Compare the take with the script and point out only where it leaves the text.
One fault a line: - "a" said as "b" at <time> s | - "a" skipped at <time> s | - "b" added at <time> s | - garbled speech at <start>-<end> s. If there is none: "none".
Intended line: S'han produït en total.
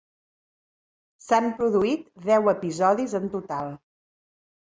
- "deu episodis" added at 2.3 s